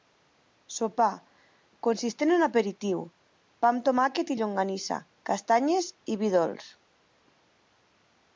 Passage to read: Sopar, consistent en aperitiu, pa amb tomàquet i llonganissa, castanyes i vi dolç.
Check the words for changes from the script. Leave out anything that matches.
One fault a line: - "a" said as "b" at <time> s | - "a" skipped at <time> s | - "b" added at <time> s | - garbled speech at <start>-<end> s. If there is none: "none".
none